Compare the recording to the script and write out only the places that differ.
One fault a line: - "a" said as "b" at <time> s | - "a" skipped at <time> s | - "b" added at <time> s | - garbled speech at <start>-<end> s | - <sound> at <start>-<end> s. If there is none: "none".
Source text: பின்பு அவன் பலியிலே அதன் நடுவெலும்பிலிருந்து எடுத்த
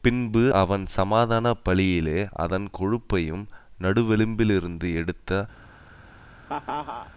- "சமாதான" added at 0.9 s
- "கொழுப்பையும்" added at 2.8 s
- laugh at 6.5-7.1 s